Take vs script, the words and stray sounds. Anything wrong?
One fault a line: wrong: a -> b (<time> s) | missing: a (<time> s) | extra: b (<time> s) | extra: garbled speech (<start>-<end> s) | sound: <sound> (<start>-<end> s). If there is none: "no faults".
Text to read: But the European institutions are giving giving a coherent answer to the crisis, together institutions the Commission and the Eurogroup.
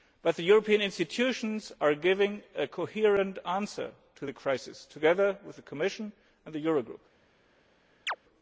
missing: giving (2.4 s)
wrong: institutions -> with (5.5 s)
sound: chirp (8.1-8.2 s)